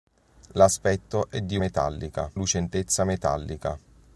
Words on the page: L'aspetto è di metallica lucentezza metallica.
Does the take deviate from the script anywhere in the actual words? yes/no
no